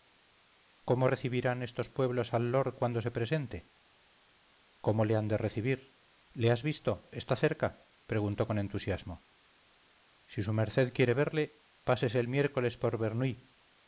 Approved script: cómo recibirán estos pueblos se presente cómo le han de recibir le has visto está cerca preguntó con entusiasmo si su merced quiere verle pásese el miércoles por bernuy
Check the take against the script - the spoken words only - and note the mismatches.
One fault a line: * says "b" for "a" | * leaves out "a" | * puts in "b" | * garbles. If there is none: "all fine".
* puts in "al lord cuando"